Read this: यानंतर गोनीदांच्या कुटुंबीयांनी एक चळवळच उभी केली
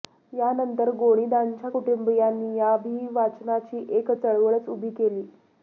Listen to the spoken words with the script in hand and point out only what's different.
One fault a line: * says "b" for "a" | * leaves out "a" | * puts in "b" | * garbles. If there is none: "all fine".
* puts in "या अभिवाचनाची"